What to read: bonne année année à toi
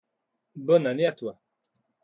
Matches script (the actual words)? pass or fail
fail